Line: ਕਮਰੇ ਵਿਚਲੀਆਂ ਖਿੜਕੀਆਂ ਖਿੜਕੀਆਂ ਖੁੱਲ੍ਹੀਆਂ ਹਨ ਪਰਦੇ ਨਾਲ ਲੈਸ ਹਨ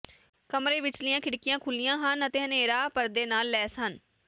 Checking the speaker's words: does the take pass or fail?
fail